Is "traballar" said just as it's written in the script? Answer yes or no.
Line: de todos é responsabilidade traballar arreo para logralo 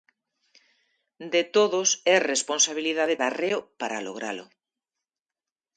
no